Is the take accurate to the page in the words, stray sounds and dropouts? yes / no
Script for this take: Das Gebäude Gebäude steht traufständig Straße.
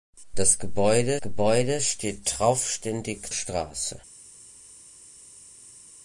yes